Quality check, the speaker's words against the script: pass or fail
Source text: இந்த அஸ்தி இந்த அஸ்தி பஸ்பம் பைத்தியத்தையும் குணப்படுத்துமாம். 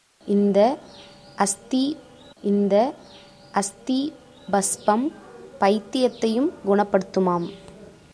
pass